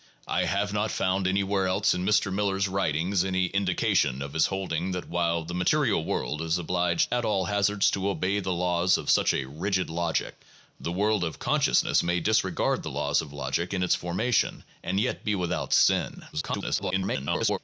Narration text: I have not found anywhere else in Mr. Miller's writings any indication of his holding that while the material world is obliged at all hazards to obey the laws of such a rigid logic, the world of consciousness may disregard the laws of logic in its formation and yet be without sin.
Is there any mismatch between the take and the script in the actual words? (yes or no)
yes